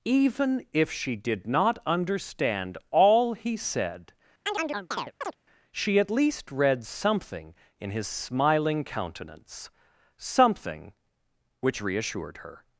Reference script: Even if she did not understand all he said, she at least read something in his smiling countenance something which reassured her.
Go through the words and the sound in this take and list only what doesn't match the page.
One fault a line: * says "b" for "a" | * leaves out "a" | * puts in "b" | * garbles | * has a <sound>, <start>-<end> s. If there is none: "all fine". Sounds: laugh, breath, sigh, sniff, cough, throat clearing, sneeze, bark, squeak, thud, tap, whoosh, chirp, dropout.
* has a chirp, 4.5-5.4 s